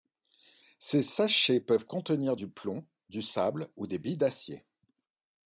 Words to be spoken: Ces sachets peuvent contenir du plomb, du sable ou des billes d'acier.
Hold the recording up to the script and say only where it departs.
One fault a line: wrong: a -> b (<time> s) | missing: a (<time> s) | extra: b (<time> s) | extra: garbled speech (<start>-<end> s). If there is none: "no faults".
no faults